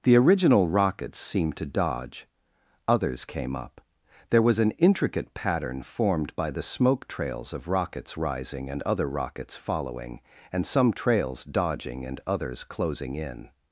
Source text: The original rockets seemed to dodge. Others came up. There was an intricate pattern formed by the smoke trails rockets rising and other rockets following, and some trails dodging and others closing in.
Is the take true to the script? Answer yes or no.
no